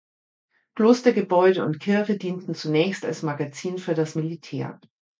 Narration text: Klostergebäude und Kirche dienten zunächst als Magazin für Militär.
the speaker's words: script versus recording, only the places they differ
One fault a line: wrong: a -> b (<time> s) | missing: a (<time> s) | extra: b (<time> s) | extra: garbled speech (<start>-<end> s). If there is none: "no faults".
extra: das (4.0 s)